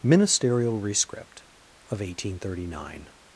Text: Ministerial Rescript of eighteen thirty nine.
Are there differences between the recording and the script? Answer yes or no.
no